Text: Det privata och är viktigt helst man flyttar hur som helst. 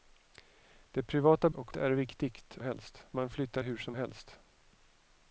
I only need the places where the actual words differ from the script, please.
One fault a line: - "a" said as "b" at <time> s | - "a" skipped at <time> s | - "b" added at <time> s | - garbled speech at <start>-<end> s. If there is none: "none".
none